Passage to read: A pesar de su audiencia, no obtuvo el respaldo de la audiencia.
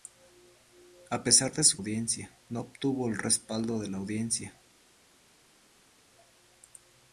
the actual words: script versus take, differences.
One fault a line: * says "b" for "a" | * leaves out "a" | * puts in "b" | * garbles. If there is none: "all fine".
all fine